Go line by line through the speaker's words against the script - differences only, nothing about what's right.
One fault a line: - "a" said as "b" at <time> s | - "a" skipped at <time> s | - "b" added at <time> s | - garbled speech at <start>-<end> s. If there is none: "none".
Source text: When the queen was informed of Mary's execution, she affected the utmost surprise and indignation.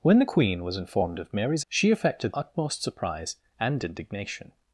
- "execution" skipped at 1.6 s
- "the" skipped at 2.3 s